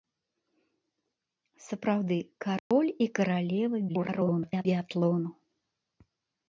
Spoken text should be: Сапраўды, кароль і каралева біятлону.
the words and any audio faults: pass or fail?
fail